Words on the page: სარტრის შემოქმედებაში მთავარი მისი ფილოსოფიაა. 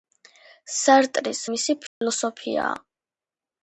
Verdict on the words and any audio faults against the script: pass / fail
fail